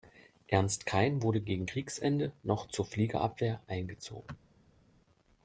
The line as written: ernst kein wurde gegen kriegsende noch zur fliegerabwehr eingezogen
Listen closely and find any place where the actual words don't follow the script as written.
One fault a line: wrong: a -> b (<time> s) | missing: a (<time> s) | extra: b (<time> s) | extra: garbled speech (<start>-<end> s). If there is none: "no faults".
no faults